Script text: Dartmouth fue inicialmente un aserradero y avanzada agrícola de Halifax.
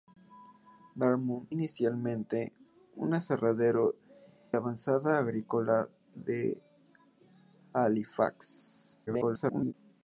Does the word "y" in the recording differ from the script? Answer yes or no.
yes